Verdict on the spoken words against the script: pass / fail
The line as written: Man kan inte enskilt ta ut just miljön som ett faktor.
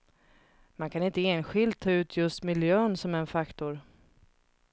fail